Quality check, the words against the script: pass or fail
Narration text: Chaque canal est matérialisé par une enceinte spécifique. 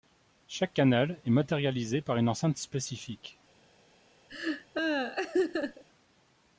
pass